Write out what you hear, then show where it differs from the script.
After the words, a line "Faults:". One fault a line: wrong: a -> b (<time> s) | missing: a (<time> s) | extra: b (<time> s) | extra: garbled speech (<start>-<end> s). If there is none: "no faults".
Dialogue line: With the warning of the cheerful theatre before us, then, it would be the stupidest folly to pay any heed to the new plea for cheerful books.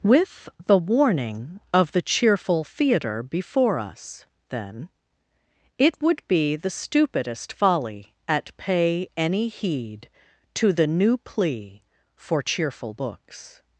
With the warning of the cheerful theatre before us, then, it would be the stupidest folly at pay any heed to the new plea for cheerful books.
Faults:
wrong: to -> at (8.3 s)